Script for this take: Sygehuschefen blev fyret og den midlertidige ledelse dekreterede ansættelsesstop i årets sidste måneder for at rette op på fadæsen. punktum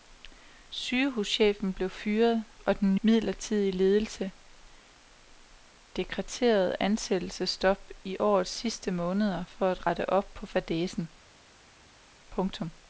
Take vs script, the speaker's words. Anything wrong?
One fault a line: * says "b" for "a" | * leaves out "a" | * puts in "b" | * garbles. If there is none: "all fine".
all fine